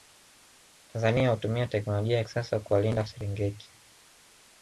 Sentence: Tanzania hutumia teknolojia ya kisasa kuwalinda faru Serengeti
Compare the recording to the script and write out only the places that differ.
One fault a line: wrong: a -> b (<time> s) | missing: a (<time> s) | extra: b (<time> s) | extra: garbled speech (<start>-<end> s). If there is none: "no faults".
missing: faru (3.0 s)